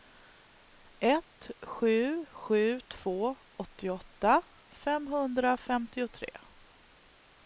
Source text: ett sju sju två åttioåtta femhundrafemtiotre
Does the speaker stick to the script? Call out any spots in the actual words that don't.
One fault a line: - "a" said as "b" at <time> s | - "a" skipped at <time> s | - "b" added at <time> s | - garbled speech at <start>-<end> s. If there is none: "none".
none